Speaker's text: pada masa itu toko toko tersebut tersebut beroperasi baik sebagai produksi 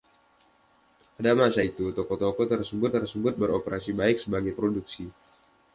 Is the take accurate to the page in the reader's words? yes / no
yes